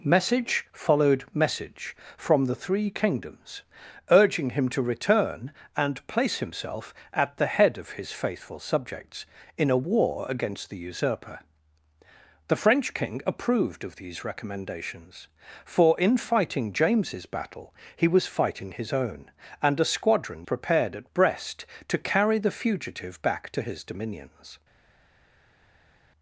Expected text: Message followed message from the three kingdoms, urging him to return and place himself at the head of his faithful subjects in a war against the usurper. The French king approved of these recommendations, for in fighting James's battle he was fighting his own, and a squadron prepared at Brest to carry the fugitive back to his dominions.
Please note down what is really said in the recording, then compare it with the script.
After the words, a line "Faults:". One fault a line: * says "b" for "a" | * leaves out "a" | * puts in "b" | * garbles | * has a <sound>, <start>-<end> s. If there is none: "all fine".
Message followed message from the three kingdoms, urging him to return and place himself at the head of his faithful subjects in a war against the usurper. The French king approved of these recommendations, for in fighting James's battle he was fighting his own, and a squadron prepared at Brest to carry the fugitive back to his dominions.
Faults:
all fine